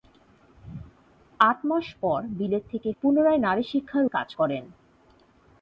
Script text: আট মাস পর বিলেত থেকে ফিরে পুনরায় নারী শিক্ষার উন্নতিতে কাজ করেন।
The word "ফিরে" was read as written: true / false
false